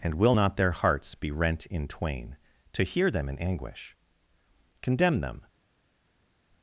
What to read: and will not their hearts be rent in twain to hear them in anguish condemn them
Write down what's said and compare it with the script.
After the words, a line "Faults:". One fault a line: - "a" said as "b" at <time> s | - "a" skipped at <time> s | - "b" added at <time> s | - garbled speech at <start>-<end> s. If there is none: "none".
and will not their hearts be rent in twain to hear them in anguish condemn them
Faults:
none